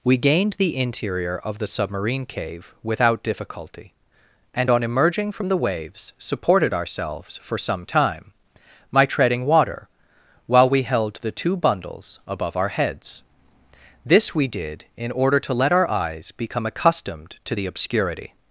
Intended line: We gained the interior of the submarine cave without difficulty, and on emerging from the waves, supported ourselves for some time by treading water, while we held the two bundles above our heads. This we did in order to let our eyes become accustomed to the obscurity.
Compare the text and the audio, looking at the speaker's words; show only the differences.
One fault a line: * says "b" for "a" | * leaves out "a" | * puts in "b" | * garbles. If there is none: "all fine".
* says "my" for "by"